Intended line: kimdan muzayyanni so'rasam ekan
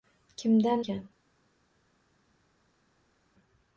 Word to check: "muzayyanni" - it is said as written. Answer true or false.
false